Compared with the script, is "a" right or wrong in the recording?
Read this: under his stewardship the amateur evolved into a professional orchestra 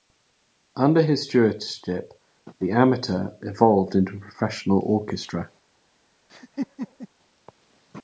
right